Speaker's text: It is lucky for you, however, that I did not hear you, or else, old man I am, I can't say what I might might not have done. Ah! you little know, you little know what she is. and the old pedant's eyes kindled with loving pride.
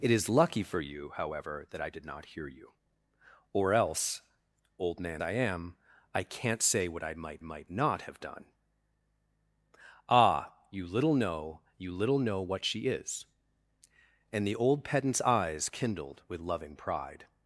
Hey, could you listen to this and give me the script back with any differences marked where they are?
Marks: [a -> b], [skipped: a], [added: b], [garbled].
It is lucky for you, however, that I did not hear you, or else, old man I am, I can't say what I might might not have done. Ah! you little know, you little know what she is. and the old pedant's eyes kindled with loving pride.